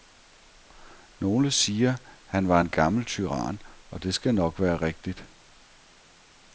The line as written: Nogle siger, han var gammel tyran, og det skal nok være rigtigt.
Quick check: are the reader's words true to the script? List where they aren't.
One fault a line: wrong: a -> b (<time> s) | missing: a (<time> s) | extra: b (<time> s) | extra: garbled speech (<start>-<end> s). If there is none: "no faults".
extra: en (2.6 s)